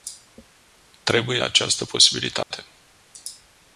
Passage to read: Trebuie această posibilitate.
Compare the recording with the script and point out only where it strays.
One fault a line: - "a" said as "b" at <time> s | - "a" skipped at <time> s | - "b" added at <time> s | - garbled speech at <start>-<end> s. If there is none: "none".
none